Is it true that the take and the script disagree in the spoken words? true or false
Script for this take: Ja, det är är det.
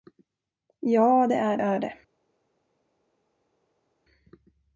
false